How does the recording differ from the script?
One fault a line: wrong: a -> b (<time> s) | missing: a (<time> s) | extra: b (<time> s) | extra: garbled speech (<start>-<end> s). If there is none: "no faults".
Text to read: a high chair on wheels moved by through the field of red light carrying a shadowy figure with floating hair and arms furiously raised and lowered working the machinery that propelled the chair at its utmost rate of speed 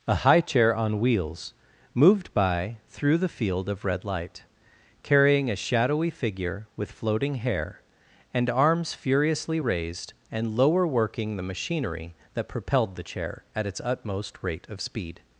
wrong: lowered -> lower (10.6 s)